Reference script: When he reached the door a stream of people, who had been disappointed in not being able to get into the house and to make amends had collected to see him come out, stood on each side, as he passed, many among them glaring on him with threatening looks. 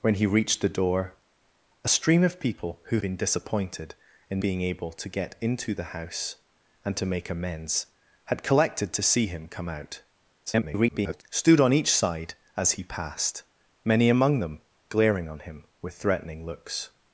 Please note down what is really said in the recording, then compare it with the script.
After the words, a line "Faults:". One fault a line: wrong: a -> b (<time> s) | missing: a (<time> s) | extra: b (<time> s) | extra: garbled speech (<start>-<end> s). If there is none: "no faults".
When he reached the door a stream of people, who been disappointed in being able to get into the house and to make amends had collected to see him come out, [garbled] stood on each side, as he passed, many among them glaring on him with threatening looks.
Faults:
missing: had (3.0 s)
missing: not (4.4 s)
extra: garbled speech (10.5-11.2 s)